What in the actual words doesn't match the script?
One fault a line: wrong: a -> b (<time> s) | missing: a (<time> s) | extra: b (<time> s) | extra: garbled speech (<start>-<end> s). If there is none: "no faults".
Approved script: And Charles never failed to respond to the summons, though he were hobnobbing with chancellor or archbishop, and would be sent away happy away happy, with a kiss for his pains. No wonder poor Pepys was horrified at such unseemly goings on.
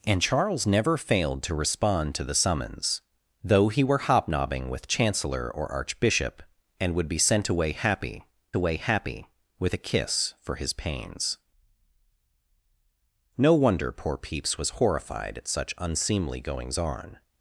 no faults